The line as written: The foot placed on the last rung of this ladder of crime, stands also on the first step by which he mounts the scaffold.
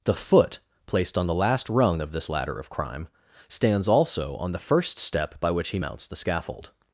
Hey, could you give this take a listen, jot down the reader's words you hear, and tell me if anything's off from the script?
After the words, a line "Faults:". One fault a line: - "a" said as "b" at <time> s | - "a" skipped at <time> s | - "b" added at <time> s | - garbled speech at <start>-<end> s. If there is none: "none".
The foot placed on the last rung of this ladder of crime, stands also on the first step by which he mounts the scaffold.
Faults:
none